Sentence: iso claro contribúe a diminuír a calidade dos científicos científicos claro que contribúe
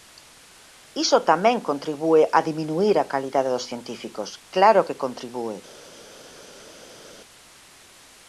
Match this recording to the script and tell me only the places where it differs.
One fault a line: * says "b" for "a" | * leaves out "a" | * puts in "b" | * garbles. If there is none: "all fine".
* says "tamén" for "claro"
* leaves out "científicos"